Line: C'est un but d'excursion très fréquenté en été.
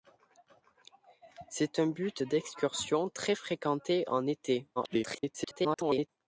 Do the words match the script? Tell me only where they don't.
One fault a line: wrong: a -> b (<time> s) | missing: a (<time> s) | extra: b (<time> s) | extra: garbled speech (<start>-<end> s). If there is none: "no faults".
extra: garbled speech (4.8-6.1 s)